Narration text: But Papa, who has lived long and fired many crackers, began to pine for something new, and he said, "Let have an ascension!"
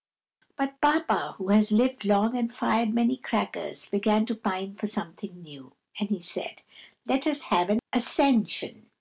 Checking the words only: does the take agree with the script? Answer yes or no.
no